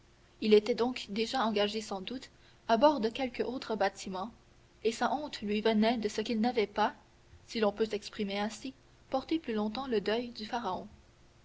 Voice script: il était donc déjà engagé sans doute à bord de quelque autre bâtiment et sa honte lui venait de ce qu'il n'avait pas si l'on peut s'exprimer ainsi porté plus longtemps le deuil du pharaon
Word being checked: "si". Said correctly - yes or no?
yes